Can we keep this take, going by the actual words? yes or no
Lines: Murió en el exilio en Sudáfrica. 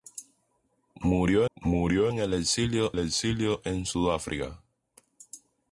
no